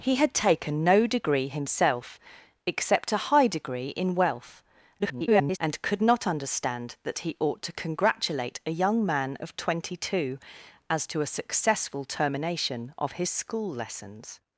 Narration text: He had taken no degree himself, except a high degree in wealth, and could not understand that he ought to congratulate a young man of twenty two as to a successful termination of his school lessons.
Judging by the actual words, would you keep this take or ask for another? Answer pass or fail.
fail